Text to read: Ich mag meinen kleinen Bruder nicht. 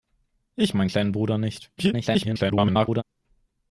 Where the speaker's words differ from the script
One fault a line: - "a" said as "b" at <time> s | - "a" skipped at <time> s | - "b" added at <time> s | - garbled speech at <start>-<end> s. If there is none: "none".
- "mag" skipped at 0.7 s
- garbled speech at 1.8-3.0 s